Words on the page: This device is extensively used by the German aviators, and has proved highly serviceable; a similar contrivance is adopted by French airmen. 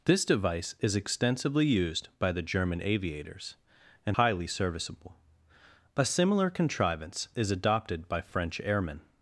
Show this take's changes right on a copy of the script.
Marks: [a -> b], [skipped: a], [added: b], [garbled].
This device is extensively used by the German aviators, and [skipped: has proved] highly serviceable; a similar contrivance is adopted by French airmen.